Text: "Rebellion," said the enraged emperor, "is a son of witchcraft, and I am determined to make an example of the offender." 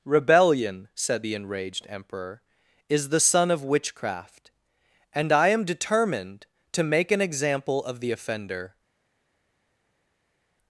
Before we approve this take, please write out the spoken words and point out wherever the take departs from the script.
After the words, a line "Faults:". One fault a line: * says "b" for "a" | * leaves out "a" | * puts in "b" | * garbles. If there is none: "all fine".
"Rebellion," said the enraged emperor, "is the son of witchcraft, and I am determined to make an example of the offender."
Faults:
* says "the" for "a"